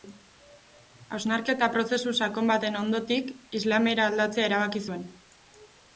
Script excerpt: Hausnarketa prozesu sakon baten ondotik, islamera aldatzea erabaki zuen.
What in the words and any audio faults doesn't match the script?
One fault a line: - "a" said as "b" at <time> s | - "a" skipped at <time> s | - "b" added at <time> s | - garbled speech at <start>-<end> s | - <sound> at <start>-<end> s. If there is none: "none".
none